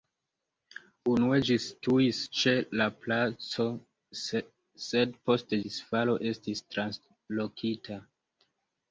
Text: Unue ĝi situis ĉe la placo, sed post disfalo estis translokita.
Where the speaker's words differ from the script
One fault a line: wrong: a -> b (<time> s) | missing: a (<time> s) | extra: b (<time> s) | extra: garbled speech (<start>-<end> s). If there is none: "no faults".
no faults